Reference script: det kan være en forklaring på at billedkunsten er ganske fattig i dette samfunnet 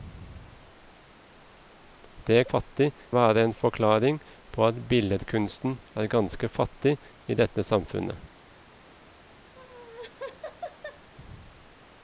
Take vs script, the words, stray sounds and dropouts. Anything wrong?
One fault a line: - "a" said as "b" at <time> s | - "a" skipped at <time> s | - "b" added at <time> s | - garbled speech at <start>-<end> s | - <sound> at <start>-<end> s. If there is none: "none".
- "kan" said as "fattig" at 2.4 s
- laugh at 9.5-11.1 s